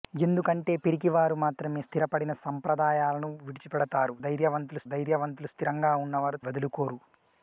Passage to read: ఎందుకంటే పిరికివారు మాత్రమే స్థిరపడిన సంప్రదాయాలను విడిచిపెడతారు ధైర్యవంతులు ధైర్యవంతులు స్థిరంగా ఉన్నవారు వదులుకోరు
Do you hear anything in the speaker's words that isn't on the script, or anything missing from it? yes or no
no